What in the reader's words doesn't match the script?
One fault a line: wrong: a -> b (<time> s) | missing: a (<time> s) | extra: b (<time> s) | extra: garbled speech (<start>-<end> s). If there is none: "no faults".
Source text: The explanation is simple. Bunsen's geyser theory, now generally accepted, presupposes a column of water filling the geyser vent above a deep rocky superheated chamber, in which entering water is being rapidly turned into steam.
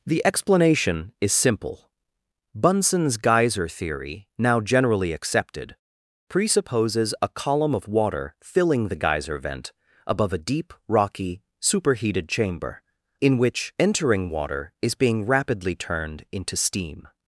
no faults